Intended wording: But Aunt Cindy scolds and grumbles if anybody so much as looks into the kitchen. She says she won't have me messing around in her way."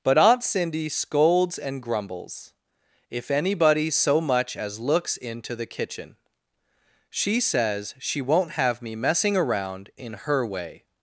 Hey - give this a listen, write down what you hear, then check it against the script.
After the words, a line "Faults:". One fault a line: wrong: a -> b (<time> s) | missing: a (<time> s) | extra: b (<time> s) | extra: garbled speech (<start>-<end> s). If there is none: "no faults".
But Aunt Cindy scolds and grumbles if anybody so much as looks into the kitchen. She says she won't have me messing around in her way."
Faults:
no faults